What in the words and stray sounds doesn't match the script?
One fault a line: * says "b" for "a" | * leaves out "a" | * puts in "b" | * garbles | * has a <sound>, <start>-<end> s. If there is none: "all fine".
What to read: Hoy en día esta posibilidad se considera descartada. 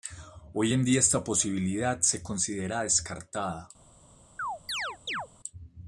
* has a chirp, 4.4-5.3 s